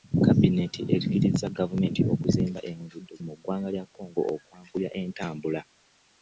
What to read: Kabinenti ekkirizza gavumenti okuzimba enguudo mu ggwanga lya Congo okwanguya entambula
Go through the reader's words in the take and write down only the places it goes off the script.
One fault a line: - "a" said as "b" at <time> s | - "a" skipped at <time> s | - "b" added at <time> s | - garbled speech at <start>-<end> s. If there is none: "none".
none